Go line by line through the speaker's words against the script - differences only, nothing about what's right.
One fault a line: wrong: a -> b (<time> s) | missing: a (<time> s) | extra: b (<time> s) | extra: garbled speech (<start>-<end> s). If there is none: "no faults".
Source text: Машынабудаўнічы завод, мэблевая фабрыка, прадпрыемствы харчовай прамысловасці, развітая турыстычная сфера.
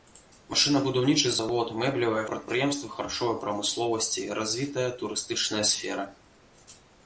missing: фабрыка (2.2 s)